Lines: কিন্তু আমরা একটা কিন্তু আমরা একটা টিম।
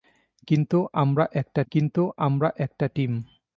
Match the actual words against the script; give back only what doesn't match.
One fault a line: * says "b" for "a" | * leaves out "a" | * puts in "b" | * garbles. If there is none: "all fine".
all fine